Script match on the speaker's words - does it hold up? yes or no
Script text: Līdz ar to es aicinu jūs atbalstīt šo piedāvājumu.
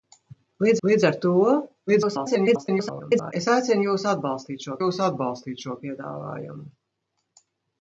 no